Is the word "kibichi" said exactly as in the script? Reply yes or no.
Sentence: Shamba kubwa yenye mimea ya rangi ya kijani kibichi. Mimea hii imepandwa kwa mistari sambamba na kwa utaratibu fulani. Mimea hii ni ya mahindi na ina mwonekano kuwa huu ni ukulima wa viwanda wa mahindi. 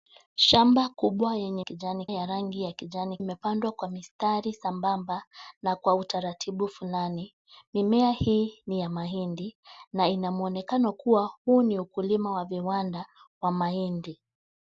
no